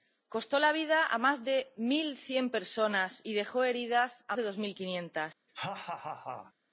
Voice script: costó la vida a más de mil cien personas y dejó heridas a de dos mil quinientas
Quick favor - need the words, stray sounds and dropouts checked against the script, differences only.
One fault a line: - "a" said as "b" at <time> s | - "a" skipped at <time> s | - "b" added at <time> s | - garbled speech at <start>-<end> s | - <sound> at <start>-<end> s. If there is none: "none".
- laugh at 5.5-6.5 s